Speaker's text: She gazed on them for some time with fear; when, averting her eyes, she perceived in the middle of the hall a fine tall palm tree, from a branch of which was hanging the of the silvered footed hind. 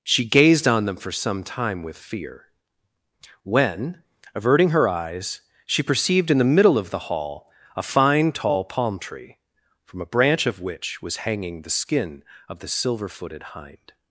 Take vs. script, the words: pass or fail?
fail